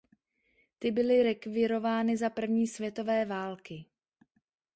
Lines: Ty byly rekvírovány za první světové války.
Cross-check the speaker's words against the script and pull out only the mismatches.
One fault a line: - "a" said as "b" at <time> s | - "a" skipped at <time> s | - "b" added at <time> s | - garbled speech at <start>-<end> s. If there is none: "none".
none